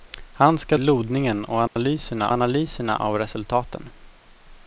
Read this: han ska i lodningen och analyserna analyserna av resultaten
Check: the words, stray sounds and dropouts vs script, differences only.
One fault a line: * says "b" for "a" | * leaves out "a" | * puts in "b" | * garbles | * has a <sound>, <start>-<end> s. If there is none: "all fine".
* has a dropout, 1.7-1.8 s